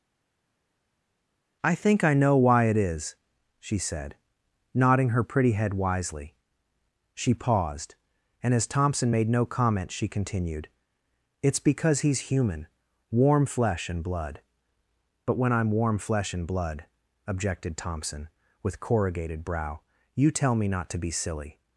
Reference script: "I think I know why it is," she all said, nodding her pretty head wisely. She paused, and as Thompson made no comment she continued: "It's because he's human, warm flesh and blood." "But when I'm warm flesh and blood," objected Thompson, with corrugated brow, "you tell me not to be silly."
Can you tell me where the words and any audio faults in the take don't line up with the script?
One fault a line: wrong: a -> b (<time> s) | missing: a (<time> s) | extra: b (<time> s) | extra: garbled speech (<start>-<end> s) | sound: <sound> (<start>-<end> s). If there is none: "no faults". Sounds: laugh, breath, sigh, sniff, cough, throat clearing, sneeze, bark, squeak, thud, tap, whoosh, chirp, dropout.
missing: all (3.8 s)